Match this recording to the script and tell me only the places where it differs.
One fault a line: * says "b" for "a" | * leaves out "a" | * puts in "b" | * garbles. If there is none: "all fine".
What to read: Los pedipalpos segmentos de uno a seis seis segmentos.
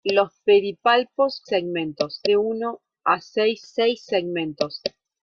all fine